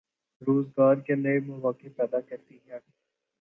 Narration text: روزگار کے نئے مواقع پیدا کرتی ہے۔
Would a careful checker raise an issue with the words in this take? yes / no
no